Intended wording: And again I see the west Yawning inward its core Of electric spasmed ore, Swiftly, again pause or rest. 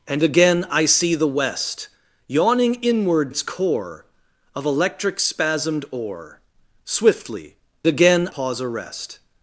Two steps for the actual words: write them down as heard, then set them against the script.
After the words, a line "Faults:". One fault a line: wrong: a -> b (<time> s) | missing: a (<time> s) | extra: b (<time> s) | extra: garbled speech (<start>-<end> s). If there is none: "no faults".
And again I see the west Yawning inward its core Of electric spasmed ore, Swiftly, again pause or rest.
Faults:
no faults